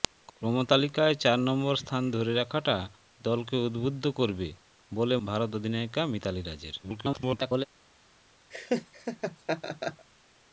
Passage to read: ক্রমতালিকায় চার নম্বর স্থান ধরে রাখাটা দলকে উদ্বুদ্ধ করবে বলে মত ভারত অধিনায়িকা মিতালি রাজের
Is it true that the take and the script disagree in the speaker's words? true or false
true